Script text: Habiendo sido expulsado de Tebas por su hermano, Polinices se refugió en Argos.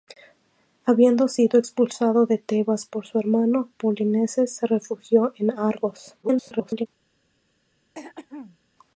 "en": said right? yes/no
yes